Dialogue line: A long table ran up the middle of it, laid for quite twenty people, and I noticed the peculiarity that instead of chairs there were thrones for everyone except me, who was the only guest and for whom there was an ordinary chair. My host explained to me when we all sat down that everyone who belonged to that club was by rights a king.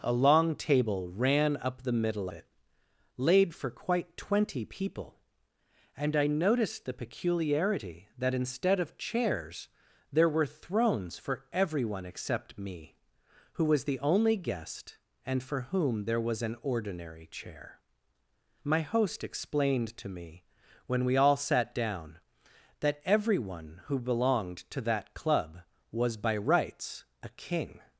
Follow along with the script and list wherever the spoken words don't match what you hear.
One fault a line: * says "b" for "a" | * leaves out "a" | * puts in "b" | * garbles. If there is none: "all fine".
* leaves out "of"